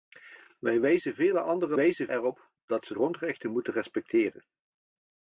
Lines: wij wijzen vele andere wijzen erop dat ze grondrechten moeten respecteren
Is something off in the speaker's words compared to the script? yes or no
no